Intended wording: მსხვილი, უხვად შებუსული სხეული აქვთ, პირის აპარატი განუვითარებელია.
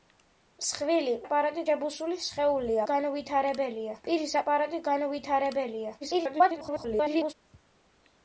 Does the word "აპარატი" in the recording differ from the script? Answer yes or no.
no